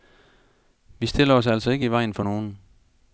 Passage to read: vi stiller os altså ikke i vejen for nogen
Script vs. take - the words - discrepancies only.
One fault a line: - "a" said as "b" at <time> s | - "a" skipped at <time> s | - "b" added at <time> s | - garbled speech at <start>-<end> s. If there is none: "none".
none